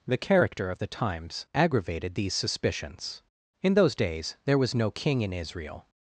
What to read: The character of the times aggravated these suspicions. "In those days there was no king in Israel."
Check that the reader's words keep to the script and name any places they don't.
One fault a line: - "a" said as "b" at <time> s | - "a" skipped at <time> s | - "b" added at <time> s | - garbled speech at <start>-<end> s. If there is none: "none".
none